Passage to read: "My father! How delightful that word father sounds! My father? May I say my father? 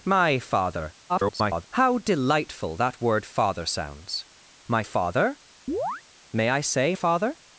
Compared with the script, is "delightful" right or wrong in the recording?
right